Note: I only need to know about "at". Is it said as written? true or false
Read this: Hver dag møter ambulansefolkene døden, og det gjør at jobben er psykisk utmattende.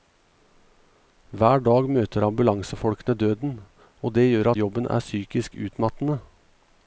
false